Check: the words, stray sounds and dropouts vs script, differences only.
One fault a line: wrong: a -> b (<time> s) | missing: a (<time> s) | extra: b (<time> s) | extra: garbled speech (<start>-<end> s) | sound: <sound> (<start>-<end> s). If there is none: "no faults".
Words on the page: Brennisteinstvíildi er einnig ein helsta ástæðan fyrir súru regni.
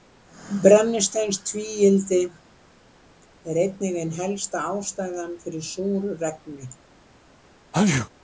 sound: sneeze (7.7-8.1 s)